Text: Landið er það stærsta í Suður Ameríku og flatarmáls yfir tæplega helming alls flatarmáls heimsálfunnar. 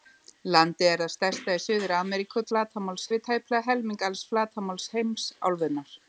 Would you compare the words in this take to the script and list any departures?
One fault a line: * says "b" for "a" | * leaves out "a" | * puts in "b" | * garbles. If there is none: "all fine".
all fine